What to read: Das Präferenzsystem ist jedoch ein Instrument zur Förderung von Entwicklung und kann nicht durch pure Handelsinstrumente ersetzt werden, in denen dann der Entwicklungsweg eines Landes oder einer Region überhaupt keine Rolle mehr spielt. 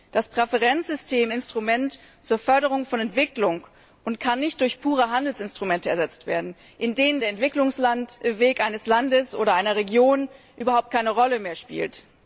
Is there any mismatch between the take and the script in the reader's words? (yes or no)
yes